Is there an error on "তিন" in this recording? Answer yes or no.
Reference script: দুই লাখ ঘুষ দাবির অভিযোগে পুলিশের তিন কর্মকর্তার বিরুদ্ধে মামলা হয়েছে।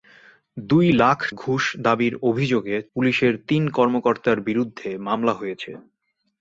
no